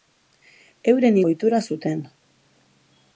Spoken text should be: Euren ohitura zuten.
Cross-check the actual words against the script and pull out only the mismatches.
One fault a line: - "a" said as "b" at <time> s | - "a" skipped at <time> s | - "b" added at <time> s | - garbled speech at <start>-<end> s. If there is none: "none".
none